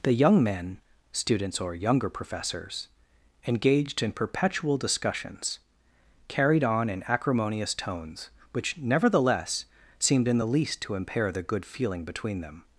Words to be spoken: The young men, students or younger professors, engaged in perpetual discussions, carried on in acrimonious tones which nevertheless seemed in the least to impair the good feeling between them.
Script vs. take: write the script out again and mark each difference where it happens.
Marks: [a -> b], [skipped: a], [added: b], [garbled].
The young men, students or younger professors, engaged in perpetual discussions, carried on in acrimonious tones which nevertheless seemed in the least to impair the good feeling between them.